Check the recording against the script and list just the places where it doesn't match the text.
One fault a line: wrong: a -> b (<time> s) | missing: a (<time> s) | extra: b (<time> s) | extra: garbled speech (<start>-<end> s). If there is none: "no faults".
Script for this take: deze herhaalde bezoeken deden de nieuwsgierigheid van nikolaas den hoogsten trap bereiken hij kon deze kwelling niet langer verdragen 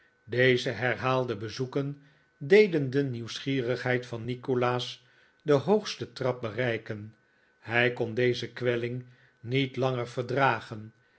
no faults